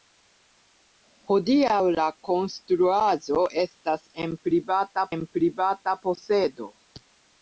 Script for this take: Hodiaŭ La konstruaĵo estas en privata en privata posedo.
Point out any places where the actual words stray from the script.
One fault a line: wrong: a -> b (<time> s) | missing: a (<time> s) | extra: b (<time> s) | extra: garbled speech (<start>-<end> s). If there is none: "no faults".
no faults